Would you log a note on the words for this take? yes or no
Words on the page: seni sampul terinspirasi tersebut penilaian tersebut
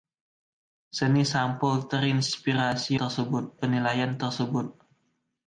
no